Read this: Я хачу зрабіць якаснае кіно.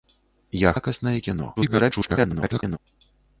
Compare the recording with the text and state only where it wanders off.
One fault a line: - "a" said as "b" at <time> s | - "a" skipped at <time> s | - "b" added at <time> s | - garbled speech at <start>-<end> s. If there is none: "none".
- "хачу зрабіць" skipped at 0.7 s
- garbled speech at 1.6-2.8 s